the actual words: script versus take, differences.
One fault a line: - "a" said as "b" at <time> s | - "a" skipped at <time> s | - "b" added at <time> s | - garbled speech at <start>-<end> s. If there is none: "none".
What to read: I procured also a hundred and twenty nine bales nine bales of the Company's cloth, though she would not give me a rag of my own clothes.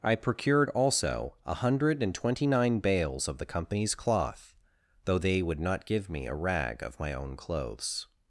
- "nine bales" skipped at 3.3 s
- "she" said as "they" at 5.2 s